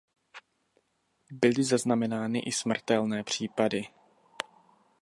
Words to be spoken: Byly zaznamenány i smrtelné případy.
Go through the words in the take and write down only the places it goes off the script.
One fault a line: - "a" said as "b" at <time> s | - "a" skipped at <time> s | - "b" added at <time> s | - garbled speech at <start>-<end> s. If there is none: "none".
none